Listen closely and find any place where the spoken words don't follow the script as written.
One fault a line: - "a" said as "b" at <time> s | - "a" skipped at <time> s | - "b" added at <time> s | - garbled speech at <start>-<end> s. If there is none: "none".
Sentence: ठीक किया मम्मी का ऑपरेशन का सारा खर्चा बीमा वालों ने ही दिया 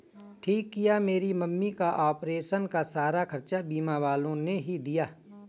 - "मेरी" added at 1.0 s